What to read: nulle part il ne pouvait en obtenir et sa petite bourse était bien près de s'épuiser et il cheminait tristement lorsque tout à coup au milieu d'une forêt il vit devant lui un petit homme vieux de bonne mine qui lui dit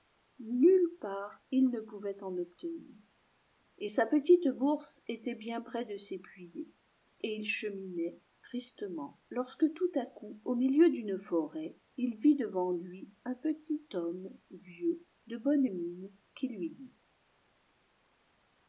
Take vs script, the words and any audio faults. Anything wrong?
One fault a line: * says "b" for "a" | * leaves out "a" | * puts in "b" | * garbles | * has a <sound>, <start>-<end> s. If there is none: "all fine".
all fine